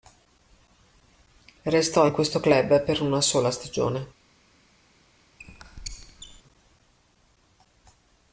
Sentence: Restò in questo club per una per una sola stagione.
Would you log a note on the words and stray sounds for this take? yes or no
yes